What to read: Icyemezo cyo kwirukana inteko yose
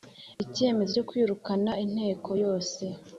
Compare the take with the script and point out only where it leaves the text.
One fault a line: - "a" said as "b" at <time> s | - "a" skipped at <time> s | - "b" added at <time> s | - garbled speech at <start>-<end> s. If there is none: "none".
none